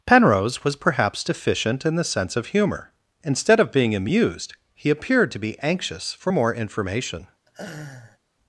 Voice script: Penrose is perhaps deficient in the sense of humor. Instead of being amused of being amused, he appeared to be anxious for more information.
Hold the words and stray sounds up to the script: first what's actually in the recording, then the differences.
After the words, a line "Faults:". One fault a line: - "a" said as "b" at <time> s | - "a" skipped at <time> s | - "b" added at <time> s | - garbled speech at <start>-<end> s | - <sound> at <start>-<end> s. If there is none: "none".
Penrose was perhaps deficient in the sense of humor. Instead of being amused, he appeared to be anxious for more information.
Faults:
- "is" said as "was" at 0.6 s
- "of being amused" skipped at 4.5 s
- laugh at 7.5-8.2 s